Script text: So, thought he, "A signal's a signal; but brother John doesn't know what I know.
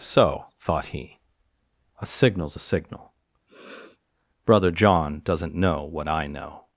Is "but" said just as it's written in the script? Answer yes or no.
no